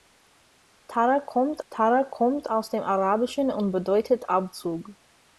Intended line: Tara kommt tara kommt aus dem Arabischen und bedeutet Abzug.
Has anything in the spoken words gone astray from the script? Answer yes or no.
no